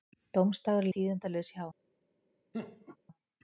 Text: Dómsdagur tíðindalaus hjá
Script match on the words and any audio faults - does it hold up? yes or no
no